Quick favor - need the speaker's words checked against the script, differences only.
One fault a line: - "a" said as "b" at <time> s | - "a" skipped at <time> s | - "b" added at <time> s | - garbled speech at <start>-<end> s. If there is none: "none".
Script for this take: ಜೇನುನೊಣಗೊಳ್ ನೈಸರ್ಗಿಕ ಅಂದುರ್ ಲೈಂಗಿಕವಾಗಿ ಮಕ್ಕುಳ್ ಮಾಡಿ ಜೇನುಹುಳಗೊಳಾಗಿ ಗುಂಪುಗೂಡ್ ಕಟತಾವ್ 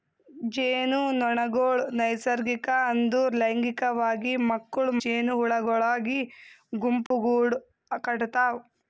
- "ಮಾಡಿ" skipped at 4.9 s